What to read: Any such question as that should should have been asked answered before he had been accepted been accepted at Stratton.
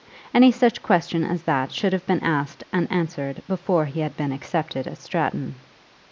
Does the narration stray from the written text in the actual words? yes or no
yes